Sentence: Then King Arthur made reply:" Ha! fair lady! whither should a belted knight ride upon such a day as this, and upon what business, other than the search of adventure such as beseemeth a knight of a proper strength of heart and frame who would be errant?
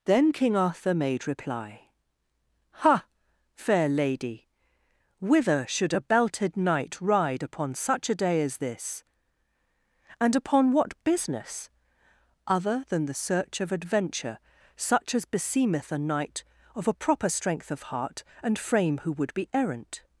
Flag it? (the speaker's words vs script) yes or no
no